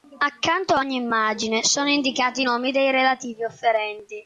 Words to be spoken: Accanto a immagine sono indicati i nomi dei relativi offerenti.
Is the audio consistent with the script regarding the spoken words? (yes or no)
no